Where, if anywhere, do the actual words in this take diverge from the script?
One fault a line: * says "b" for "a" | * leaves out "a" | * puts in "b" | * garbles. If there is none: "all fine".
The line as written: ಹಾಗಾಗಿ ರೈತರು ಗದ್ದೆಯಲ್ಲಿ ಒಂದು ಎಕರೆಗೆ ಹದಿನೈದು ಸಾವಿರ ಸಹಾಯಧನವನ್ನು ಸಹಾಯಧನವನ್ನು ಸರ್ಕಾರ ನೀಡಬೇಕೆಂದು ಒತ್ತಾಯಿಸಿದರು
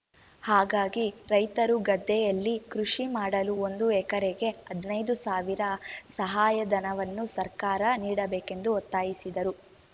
* puts in "ಕೃಷಿ ಮಾಡಲು"
* leaves out "ಸಹಾಯಧನವನ್ನು"